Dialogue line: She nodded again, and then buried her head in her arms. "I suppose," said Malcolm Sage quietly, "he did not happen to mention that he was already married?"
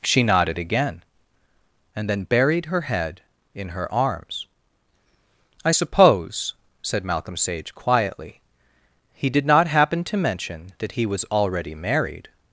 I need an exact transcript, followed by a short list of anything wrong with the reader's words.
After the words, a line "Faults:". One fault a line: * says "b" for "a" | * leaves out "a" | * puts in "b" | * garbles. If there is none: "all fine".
She nodded again, and then buried her head in her arms. "I suppose," said Malcolm Sage quietly, "he did not happen to mention that he was already married?"
Faults:
all fine